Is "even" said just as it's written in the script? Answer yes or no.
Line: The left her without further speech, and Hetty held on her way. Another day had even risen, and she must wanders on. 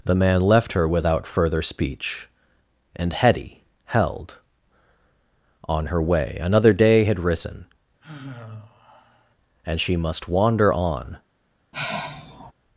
no